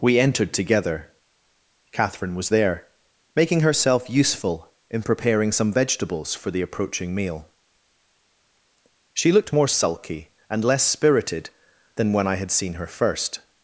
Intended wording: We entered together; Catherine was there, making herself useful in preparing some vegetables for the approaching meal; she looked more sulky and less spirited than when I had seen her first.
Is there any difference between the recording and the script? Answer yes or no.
no